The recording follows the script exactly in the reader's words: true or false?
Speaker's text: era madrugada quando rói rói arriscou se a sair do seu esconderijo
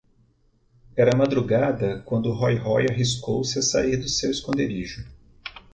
true